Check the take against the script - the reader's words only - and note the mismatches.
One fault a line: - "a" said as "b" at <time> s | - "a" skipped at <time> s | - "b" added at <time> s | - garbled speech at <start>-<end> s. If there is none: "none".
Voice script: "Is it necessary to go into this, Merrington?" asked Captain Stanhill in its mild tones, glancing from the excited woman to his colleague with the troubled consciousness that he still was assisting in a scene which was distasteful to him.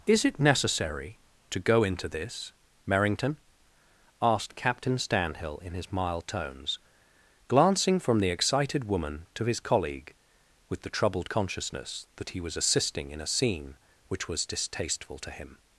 - "its" said as "his" at 5.7 s
- "still" skipped at 12.4 s